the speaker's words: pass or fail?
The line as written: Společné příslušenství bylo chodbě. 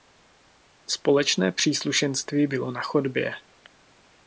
fail